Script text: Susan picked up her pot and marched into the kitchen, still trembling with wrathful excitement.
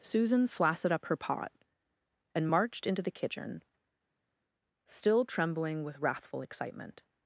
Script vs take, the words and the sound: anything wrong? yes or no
yes